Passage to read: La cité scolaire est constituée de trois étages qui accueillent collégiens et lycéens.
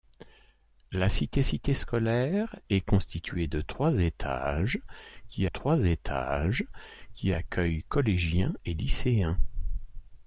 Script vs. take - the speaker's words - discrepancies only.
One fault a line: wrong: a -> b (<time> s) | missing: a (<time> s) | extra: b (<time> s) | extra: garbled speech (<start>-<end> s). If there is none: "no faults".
extra: cité (1.4 s)
extra: trois étages qui (5.4 s)